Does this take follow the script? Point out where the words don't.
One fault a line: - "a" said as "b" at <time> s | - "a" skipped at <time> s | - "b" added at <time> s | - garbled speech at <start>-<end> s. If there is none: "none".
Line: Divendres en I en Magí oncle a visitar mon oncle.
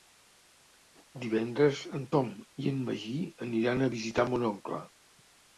- "Tom" added at 2.2 s
- "oncle" said as "aniran" at 3.5 s